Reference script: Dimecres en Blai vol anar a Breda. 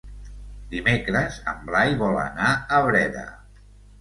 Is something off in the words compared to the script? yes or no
no